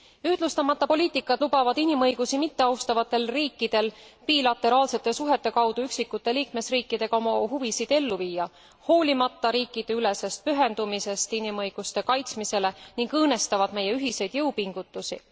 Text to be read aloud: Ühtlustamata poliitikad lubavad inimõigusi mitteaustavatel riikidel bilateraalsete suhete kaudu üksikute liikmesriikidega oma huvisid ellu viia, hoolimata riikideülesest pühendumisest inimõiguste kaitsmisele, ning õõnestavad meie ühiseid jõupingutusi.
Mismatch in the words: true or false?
false